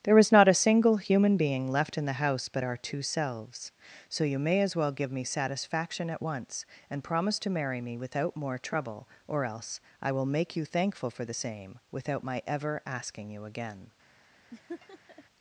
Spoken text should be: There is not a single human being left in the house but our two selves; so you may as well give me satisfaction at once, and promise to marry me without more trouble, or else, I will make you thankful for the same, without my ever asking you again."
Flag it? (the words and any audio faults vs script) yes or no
yes